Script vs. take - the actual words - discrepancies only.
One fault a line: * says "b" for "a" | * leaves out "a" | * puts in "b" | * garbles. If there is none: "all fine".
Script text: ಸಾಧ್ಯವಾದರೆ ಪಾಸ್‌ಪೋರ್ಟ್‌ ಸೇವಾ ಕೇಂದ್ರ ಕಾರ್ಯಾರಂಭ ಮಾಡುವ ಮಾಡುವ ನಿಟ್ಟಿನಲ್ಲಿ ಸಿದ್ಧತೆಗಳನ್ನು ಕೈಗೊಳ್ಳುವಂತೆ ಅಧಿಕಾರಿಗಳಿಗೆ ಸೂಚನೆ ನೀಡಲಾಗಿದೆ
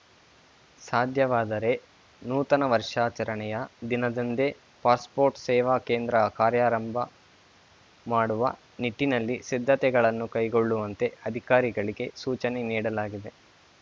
* puts in "ನೂತನ ವರ್ಷಾಚರಣೆಯ ದಿನದಂದೇ"
* leaves out "ಮಾಡುವ"